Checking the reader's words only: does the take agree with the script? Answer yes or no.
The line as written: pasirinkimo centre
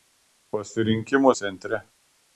yes